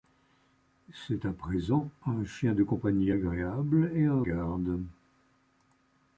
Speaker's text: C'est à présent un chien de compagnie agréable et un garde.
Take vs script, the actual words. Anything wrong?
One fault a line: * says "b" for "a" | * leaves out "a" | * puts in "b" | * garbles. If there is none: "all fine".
all fine